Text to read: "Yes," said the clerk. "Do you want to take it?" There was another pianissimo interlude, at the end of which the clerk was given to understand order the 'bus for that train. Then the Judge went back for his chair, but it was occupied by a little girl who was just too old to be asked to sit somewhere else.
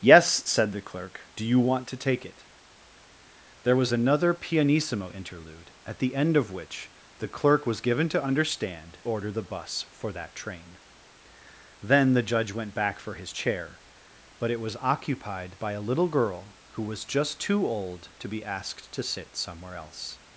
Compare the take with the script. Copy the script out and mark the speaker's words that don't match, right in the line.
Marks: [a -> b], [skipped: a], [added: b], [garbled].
"Yes," said the clerk. "Do you want to take it?" There was another pianissimo interlude, at the end of which the clerk was given to understand order the 'bus for that train. Then the Judge went back for his chair, but it was occupied by a little girl who was just too old to be asked to sit somewhere else.